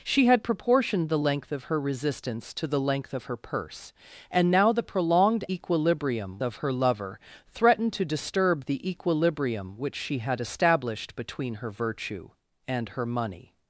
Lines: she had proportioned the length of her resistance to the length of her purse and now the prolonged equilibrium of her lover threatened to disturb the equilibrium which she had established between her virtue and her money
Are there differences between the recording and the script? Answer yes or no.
no